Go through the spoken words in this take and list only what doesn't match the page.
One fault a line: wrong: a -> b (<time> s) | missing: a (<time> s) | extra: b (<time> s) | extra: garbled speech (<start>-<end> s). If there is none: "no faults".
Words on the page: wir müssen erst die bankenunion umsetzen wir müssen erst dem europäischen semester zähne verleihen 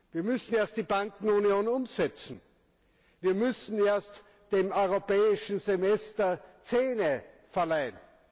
no faults